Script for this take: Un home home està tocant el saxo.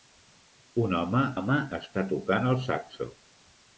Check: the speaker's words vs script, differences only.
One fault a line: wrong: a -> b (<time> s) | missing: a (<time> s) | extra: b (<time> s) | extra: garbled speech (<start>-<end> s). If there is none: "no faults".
no faults